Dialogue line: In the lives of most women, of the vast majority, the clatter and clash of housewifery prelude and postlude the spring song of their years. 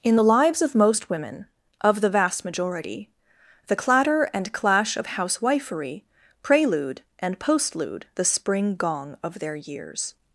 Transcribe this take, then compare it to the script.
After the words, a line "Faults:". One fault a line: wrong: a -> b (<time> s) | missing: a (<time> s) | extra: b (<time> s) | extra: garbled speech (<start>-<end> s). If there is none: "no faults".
In the lives of most women, of the vast majority, the clatter and clash of housewifery prelude and postlude the spring gong of their years.
Faults:
wrong: song -> gong (8.8 s)